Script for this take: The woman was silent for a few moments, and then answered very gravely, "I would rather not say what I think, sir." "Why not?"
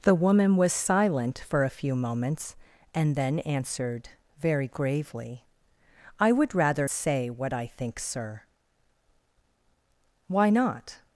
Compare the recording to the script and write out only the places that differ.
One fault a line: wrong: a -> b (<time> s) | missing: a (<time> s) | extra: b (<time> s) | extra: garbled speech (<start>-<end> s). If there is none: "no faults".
missing: not (6.9 s)